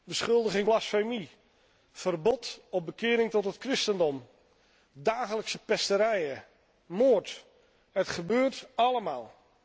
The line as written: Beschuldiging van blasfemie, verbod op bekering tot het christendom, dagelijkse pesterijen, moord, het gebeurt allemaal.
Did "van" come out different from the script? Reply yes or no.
yes